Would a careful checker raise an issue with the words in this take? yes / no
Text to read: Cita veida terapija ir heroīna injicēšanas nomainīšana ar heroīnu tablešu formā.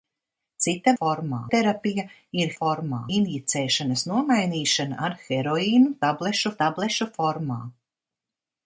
yes